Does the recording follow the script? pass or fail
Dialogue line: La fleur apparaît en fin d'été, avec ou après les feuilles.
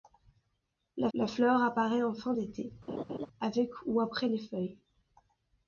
fail